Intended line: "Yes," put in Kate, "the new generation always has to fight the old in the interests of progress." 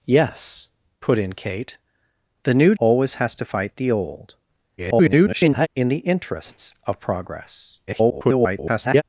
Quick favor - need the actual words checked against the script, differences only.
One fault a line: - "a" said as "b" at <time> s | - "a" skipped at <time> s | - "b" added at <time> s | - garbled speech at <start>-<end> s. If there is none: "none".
- "generation" skipped at 2.8 s
- garbled speech at 4.8-5.7 s
- garbled speech at 7.9-9.0 s